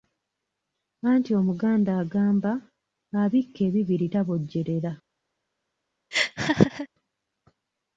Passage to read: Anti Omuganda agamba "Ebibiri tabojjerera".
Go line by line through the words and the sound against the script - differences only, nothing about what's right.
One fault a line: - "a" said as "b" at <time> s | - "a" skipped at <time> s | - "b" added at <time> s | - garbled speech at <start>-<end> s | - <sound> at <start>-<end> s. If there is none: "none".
- "Abikka" added at 3.2 s
- laugh at 6.1-6.9 s